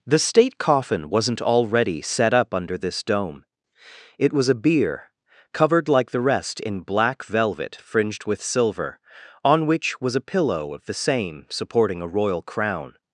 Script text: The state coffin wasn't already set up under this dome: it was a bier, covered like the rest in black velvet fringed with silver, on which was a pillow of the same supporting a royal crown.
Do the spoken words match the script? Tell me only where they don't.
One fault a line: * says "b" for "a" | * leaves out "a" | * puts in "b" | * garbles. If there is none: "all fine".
all fine